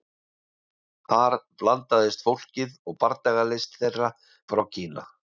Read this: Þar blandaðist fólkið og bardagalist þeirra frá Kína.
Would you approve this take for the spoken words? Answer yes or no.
yes